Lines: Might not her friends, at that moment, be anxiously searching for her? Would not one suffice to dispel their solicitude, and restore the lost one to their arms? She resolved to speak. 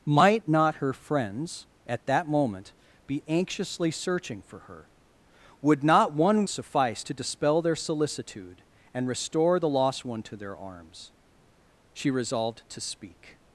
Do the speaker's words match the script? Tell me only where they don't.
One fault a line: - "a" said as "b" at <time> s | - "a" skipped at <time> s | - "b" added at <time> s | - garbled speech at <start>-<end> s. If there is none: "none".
none